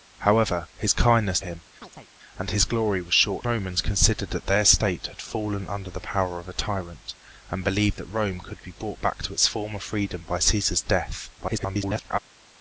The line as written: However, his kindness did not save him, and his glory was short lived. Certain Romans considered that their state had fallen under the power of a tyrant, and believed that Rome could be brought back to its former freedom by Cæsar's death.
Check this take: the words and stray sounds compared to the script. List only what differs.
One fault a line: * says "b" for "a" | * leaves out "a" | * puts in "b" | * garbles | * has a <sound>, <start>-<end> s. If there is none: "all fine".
* leaves out "did not save"
* has a chirp, 1.8-2.1 s
* leaves out "lived Certain"
* garbles